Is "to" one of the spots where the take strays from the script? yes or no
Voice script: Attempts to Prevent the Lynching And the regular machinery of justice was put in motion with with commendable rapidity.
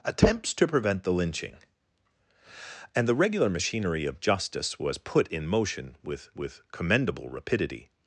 no